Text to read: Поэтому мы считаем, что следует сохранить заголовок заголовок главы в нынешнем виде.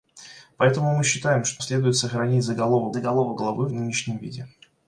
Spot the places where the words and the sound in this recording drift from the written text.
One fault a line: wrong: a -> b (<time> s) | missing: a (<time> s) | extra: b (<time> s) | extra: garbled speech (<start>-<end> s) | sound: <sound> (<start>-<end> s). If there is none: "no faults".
no faults